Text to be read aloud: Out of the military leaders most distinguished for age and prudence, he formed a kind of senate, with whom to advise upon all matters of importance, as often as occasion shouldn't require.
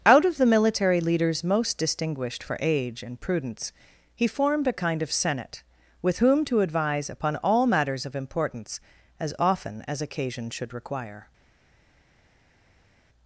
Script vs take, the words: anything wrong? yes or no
yes